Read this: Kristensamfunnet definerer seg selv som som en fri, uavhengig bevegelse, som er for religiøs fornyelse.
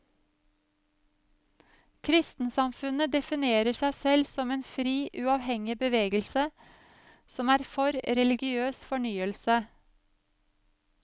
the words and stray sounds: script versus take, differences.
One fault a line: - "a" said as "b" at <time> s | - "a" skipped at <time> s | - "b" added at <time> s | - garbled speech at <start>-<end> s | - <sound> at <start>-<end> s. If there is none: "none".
- "som" skipped at 4.5 s